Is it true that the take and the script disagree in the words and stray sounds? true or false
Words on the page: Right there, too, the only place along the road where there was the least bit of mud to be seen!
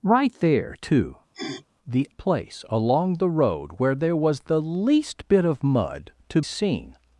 true